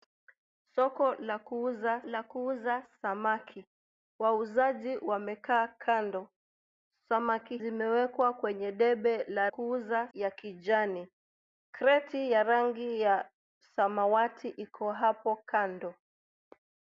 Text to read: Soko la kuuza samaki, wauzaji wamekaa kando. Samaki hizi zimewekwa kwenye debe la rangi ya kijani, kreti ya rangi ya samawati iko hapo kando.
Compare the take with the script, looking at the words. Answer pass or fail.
fail